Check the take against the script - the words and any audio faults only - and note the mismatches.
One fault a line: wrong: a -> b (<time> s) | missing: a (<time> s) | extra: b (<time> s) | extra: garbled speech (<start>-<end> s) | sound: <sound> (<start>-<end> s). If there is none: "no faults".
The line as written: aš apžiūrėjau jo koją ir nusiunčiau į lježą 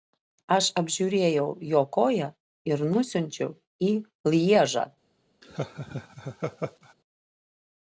sound: laugh (5.4-6.9 s)